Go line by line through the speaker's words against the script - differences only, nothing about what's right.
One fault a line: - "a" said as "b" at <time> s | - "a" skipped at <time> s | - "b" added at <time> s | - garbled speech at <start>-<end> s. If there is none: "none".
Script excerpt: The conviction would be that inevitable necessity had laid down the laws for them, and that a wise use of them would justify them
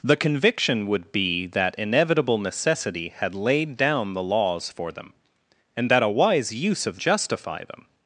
- "them would" skipped at 7.0 s